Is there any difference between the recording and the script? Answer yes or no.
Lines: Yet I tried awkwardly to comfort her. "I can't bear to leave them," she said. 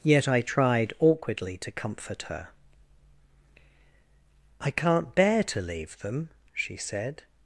no